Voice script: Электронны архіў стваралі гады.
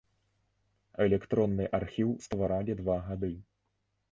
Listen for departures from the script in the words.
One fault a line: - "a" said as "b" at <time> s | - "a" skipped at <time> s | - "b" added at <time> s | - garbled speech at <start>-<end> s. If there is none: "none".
- "два" added at 2.8 s